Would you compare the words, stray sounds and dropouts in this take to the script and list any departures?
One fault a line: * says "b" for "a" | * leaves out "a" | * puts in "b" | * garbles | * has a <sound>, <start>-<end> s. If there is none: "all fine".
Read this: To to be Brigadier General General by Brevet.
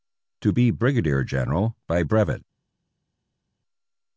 * leaves out "to"
* leaves out "General"